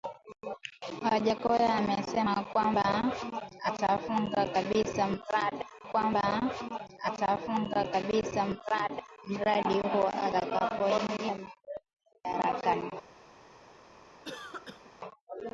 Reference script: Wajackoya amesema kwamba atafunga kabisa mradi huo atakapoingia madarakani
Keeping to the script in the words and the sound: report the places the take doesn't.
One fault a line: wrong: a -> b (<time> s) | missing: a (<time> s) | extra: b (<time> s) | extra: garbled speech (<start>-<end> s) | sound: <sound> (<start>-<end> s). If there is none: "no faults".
extra: kwamba atafunga kabisa (5.8 s)
sound: cough (14.2-14.9 s)